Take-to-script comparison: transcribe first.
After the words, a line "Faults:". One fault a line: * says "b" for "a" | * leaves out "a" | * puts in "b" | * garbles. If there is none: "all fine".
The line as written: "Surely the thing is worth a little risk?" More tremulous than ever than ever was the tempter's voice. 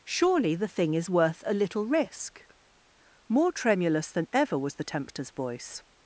"Surely the thing is worth a little risk?" More tremulous than ever was the tempter's voice.
Faults:
* leaves out "than ever"